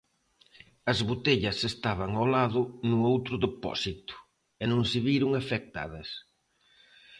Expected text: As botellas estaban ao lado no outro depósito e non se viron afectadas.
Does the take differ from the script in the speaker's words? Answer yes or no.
no